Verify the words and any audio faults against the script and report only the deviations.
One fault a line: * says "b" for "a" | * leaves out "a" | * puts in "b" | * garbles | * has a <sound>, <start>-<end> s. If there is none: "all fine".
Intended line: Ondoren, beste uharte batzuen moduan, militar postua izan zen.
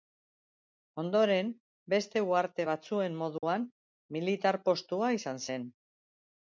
* has a dropout, 3.4-3.4 s